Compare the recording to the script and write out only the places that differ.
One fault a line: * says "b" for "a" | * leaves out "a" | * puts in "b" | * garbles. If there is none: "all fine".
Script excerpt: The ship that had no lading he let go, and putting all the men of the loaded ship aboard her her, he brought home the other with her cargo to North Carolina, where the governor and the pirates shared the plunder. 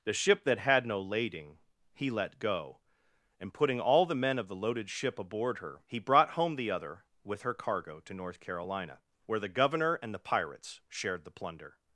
* leaves out "her"